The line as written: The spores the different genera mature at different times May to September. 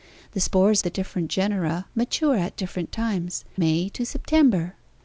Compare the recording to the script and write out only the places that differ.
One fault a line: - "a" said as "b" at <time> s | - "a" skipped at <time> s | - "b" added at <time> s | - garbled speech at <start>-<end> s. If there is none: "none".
none